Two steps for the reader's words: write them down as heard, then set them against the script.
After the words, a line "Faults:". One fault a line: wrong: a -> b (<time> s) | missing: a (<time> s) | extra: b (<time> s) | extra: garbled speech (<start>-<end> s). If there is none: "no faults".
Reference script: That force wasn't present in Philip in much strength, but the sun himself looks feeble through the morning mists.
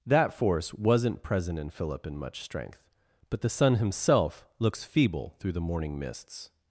That force wasn't present in Philip in much strength, but the sun himself looks feeble through the morning mists.
Faults:
no faults